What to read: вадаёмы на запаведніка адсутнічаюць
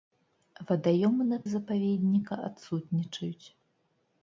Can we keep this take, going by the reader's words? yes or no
yes